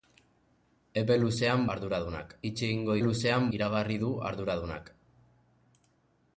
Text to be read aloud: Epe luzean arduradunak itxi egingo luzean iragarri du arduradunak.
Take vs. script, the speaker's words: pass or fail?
pass